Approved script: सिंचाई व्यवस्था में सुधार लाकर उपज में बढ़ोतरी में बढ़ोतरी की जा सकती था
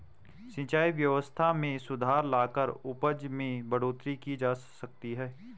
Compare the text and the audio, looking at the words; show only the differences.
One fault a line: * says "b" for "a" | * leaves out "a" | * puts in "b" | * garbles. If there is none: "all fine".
* leaves out "में बढ़ोतरी"
* says "है" for "था"